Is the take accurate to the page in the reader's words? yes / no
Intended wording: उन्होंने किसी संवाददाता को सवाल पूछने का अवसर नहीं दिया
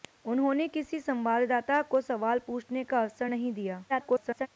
no